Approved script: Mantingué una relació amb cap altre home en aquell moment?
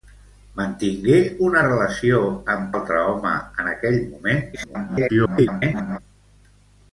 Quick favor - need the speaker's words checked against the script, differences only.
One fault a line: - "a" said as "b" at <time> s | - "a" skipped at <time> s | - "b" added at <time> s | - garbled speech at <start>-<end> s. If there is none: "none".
- "cap" skipped at 2.7 s
- garbled speech at 4.5-6.0 s